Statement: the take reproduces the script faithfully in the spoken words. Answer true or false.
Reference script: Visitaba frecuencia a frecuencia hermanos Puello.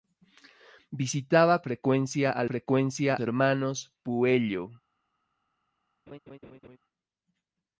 true